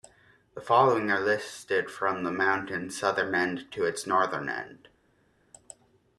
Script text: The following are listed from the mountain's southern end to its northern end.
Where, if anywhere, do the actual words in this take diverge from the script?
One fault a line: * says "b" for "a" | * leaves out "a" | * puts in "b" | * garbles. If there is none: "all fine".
all fine